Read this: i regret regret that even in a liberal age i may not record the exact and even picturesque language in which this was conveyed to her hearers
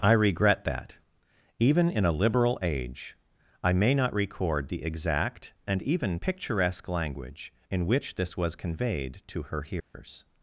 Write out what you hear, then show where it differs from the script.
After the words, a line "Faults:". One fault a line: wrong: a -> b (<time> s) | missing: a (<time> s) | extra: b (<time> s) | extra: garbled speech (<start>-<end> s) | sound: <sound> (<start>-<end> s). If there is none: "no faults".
i regret that even in a liberal age i may not record the exact and even picturesque language in which this was conveyed to her hearers
Faults:
missing: regret (0.6 s)
sound: dropout (9.8-9.9 s)